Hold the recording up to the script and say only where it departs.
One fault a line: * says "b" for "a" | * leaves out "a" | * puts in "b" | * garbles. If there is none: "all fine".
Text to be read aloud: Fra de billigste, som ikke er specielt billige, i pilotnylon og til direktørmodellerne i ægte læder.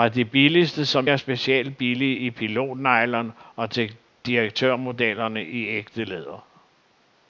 * leaves out "ikke"